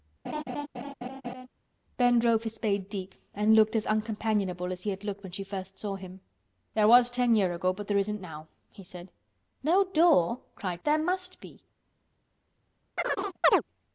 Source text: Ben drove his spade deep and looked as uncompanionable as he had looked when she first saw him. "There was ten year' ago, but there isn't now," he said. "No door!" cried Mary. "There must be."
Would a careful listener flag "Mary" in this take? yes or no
yes